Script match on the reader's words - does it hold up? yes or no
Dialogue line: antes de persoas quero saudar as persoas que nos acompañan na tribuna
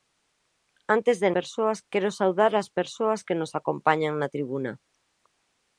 yes